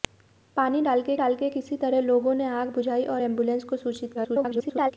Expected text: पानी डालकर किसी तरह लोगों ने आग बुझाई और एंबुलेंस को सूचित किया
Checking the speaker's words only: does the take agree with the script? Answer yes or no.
no